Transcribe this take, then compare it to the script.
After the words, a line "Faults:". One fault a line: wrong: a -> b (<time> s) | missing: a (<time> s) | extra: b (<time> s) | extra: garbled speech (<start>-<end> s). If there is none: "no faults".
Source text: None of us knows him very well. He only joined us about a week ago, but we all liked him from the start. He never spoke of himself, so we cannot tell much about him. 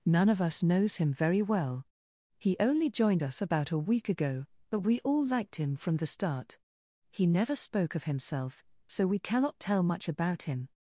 None of us knows him very well. He only joined us about a week ago, but we all liked him from the start. He never spoke of himself, so we cannot tell much about him.
Faults:
no faults